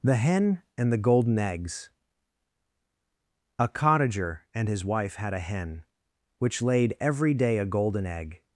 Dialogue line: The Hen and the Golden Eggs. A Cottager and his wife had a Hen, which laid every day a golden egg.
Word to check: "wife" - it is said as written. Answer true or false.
true